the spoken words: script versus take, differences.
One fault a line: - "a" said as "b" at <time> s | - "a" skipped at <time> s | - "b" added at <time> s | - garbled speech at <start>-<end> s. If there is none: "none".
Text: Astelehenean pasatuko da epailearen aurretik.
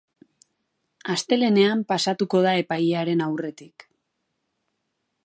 none